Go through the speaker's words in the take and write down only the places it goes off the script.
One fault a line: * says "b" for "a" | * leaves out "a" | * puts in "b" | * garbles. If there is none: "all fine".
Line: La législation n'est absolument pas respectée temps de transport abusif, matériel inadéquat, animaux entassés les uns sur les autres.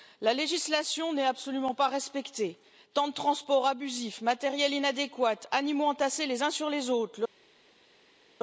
all fine